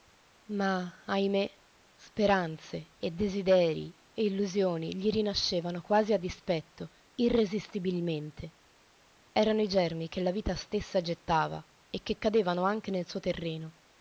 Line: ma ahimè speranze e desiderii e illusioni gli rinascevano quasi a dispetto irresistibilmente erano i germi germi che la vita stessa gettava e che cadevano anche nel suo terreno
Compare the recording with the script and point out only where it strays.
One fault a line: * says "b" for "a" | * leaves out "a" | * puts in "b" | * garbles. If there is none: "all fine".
* leaves out "germi"